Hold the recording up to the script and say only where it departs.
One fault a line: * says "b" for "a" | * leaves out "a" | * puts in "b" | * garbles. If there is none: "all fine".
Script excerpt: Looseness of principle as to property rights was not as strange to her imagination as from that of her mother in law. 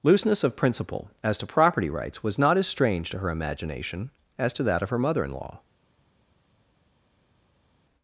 * says "to" for "from"